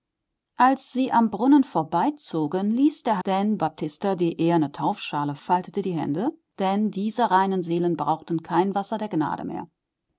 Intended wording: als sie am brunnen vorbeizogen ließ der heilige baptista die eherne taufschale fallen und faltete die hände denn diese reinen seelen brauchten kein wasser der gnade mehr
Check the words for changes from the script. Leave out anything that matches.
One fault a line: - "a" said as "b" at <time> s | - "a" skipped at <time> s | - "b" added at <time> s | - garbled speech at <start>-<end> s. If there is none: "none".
- "heilige" said as "denn" at 3.2 s
- "fallen und" skipped at 5.4 s